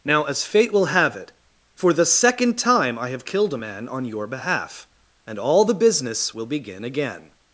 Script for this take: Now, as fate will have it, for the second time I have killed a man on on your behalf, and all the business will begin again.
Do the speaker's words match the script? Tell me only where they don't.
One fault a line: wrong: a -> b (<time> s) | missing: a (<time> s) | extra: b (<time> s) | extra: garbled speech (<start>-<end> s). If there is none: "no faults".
missing: on (4.0 s)